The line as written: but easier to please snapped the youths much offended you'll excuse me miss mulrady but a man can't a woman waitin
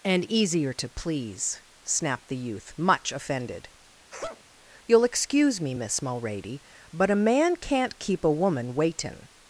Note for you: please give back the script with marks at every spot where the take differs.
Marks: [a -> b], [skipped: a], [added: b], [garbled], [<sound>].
[but -> and] easier to please snapped the [youths -> youth] much offended [sneeze] you'll excuse me miss mulrady but a man can't [added: keep] a woman waitin